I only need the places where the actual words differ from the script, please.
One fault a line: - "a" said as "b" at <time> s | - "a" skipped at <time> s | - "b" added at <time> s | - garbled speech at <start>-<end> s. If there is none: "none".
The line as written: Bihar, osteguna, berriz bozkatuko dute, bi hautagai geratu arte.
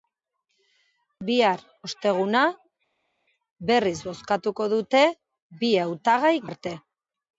- "geratu" skipped at 6.3 s